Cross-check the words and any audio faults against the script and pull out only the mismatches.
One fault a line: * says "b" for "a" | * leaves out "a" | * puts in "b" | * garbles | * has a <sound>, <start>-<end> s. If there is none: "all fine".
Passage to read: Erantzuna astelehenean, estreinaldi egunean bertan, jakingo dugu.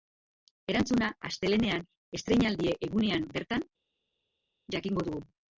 all fine